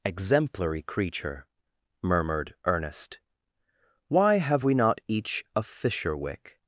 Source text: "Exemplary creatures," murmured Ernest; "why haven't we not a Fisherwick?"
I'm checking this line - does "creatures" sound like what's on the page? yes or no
no